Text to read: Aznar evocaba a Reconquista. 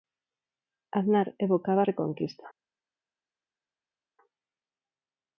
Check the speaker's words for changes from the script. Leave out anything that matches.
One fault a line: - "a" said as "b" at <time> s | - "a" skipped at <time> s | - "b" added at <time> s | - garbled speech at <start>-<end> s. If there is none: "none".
none